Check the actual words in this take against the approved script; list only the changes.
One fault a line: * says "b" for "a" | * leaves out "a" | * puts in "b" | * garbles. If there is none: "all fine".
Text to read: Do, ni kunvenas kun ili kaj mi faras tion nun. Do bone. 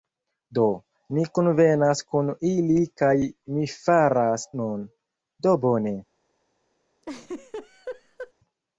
* leaves out "tion"